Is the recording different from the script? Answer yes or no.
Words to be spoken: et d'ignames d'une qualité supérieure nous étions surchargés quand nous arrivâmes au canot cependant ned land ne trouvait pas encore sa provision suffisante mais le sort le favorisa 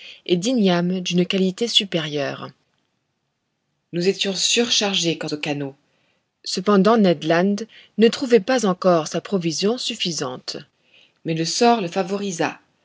yes